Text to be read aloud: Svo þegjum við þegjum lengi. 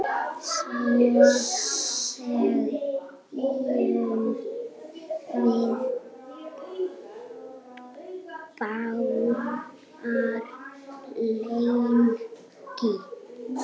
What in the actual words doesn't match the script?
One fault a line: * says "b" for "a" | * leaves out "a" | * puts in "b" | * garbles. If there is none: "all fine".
* says "báðar" for "þegjum"